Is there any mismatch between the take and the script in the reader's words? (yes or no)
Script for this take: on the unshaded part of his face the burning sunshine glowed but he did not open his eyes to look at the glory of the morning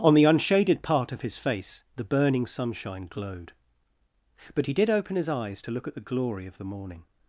yes